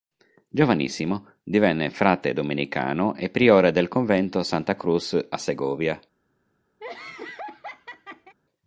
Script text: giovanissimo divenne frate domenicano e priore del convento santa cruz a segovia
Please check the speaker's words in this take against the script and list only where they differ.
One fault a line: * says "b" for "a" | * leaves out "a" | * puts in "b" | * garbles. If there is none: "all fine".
all fine